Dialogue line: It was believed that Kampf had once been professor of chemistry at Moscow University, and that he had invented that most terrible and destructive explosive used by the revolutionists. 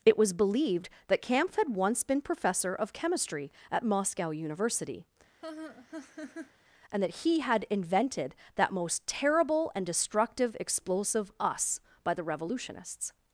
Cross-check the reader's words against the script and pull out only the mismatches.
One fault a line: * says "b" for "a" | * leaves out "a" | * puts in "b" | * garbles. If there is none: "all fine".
* says "us" for "used"